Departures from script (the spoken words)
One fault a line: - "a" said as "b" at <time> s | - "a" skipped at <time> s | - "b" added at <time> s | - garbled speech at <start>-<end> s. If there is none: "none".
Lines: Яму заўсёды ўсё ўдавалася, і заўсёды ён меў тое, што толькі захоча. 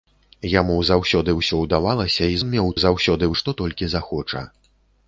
- "заўсёды" skipped at 2.4 s
- "тое" said as "заўсёды" at 2.8 s